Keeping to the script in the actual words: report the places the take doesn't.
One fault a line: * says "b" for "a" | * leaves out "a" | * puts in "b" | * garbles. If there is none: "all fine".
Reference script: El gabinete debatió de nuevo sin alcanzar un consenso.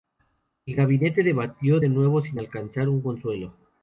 all fine